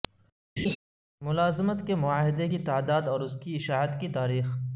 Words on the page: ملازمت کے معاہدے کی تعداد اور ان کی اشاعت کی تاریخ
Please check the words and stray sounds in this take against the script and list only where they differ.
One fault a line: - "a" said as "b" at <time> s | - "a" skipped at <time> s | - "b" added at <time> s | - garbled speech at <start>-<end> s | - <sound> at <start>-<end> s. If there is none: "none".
- laugh at 0.6-0.8 s
- "ان" said as "اس" at 3.2 s